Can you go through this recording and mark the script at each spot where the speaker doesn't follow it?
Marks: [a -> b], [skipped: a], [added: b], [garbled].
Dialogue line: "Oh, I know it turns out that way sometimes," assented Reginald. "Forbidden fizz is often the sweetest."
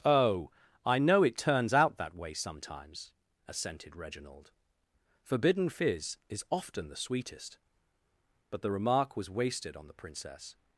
"Oh, I know it turns out that way sometimes," assented Reginald. "Forbidden fizz is often the sweetest." [added: But the remark was wasted on the Princess]